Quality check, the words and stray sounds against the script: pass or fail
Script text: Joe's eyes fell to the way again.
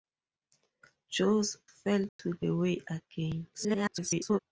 fail